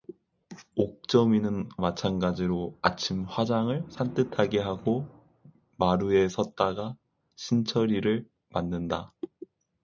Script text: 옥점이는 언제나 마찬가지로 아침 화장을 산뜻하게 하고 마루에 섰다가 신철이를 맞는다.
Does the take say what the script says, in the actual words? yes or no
no